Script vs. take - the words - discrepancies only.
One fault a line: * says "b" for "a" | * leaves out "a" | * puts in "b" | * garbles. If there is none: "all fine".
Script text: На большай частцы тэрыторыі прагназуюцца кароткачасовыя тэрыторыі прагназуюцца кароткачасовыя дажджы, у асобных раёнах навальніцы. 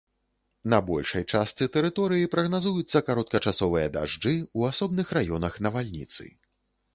* leaves out "тэрыторыі прагназуюцца кароткачасовыя"